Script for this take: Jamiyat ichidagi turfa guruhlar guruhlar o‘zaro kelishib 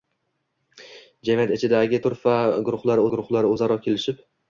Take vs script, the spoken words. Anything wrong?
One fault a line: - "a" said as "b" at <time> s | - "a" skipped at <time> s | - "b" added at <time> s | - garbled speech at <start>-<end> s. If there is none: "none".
none